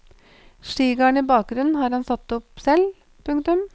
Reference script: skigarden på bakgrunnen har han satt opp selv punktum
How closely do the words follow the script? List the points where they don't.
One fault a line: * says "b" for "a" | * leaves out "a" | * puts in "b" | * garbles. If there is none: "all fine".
* says "i" for "på"